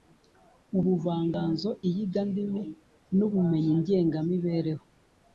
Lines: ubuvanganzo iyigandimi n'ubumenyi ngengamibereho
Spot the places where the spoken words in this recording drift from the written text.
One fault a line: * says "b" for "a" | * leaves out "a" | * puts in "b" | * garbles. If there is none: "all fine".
all fine